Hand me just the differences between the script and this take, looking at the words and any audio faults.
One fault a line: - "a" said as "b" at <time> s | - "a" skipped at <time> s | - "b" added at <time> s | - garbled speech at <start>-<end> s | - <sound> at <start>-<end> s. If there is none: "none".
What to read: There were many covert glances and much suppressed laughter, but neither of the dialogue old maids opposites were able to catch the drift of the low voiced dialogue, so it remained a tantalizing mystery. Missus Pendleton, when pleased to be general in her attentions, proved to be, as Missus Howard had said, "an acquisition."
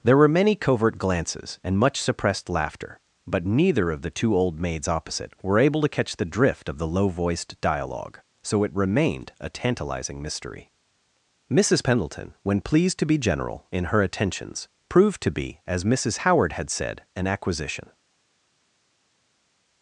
- "dialogue" said as "two" at 4.1 s
- "opposites" said as "opposite" at 4.9 s